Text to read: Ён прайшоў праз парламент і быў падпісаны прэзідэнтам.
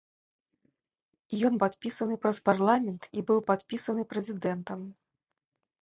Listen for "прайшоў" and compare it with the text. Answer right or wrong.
wrong